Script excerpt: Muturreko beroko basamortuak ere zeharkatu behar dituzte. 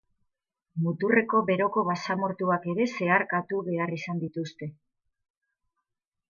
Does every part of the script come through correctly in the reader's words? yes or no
no